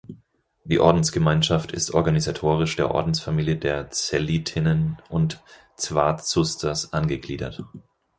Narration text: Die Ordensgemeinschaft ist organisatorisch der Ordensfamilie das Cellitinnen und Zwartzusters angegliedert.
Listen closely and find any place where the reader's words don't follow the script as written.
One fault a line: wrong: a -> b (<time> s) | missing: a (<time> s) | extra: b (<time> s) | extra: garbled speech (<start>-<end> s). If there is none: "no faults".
wrong: das -> der (3.6 s)